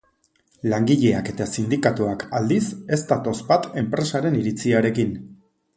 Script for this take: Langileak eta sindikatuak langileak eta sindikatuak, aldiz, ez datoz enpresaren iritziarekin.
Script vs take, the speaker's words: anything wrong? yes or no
yes